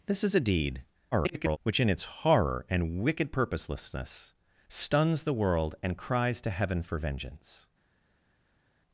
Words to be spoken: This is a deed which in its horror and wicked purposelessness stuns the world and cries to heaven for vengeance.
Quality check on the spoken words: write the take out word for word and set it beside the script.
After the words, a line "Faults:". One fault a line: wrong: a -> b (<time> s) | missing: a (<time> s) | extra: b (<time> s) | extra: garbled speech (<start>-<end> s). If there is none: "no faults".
This is a deed [garbled] which in its horror and wicked purposelessness stuns the world and cries to heaven for vengeance.
Faults:
extra: garbled speech (1.1-1.6 s)